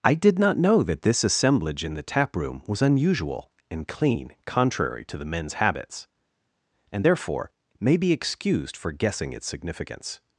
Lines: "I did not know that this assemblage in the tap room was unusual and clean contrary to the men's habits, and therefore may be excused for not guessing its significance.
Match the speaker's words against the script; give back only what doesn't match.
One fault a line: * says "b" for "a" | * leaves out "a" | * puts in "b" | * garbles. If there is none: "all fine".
* leaves out "not"